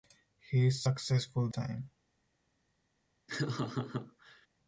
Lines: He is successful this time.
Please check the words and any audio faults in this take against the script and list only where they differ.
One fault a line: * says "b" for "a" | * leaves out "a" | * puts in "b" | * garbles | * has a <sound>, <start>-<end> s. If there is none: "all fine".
* leaves out "this"
* has a laugh, 3.3-4.5 s